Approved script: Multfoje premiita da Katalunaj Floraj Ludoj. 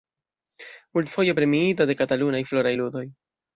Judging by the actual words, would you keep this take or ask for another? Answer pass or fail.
fail